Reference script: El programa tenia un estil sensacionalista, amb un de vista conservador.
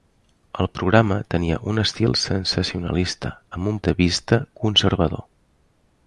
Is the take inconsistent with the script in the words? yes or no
no